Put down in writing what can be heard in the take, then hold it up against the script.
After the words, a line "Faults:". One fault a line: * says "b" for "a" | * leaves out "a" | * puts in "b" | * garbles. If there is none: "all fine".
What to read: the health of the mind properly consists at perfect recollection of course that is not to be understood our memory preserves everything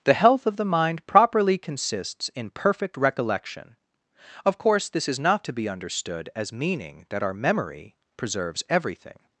the health of the mind properly consists in perfect recollection of course this is not to be understood as meaning that our memory preserves everything
Faults:
* says "in" for "at"
* says "this" for "that"
* puts in "as meaning that"